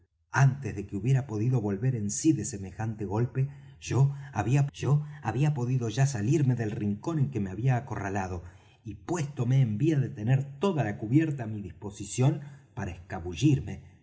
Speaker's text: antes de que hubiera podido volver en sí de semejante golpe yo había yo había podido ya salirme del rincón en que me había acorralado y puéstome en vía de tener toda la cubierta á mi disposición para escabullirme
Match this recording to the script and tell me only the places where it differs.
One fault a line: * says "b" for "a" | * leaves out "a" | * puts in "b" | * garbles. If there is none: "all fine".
all fine